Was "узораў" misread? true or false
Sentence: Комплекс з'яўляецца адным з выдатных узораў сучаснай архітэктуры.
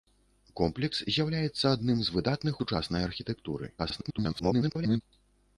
true